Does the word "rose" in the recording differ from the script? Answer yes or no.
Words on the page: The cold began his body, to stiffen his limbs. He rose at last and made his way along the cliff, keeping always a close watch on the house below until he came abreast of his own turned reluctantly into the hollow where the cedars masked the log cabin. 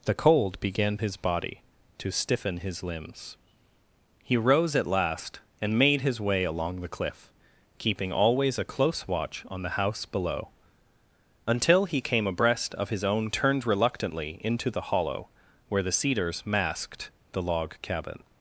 no